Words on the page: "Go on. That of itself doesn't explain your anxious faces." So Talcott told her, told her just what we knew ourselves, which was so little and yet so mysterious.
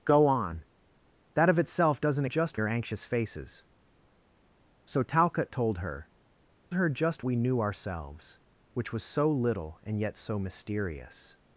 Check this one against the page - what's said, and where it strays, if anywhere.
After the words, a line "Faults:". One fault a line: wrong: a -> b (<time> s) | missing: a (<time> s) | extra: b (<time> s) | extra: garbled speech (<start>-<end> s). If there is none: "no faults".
"Go on. That of itself doesn't just your anxious faces." So Talcott told her, her just we knew ourselves, which was so little and yet so mysterious.
Faults:
wrong: explain -> just (2.2 s)
missing: told (6.1 s)
missing: what (7.2 s)